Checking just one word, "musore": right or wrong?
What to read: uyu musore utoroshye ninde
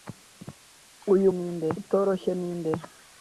wrong